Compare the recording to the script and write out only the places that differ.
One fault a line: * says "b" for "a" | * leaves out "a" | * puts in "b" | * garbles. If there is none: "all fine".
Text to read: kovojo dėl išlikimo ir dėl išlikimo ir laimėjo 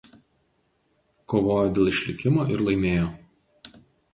* leaves out "dėl išlikimo ir"